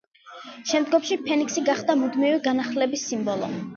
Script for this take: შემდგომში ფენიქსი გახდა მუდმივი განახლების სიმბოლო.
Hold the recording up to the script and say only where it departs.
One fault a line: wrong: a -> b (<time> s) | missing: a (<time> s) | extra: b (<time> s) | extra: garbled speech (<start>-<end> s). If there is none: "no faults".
no faults